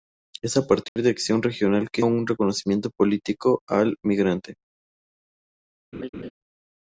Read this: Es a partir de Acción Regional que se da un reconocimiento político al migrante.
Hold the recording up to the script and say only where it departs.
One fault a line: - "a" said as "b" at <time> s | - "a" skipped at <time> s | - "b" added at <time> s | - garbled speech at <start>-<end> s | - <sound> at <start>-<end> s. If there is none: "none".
- dropout at 0.9-1.0 s
- "se da" skipped at 2.0 s
- laugh at 5.9-6.3 s